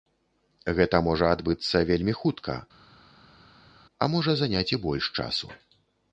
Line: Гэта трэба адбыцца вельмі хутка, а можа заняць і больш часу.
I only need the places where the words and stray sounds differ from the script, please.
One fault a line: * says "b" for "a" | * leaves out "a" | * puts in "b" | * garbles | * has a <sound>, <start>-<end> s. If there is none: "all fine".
* says "можа" for "трэба"